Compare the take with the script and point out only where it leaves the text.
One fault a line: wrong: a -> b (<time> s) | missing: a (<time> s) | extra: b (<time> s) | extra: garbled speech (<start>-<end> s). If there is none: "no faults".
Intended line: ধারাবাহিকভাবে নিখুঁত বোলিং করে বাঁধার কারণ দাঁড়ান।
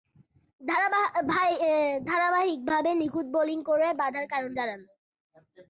no faults